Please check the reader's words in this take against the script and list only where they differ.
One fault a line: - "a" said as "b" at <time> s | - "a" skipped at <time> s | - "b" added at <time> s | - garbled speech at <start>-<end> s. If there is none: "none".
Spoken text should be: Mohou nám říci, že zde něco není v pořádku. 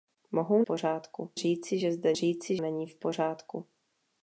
- "nám" said as "pořádku" at 0.6 s
- "něco" said as "říci" at 2.1 s